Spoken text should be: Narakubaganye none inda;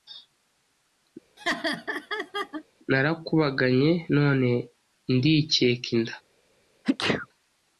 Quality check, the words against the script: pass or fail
fail